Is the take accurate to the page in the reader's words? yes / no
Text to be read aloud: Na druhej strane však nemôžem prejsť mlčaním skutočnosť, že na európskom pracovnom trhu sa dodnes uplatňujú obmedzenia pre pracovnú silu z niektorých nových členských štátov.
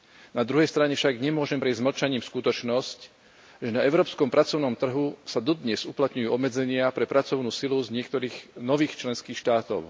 yes